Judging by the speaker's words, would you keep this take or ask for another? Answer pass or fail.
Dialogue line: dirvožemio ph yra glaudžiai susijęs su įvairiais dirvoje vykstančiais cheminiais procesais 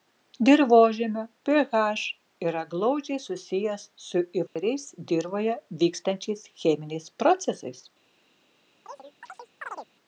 pass